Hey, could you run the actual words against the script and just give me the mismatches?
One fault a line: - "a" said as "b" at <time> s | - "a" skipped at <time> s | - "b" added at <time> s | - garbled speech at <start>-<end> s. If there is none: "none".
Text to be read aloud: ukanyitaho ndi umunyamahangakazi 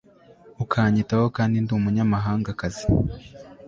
- "kandi" added at 1.4 s